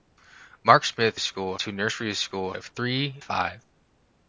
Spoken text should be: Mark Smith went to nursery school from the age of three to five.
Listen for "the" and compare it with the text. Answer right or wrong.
wrong